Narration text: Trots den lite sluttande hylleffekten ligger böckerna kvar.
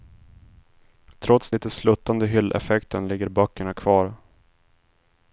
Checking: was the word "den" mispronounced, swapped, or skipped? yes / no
yes